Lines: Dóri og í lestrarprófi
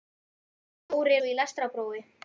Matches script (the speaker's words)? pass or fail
pass